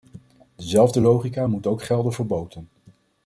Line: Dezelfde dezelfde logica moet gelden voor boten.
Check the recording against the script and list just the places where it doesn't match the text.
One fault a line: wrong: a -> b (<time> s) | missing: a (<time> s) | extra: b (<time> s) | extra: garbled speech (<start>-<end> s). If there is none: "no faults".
missing: dezelfde (1.0 s)
extra: ook (1.7 s)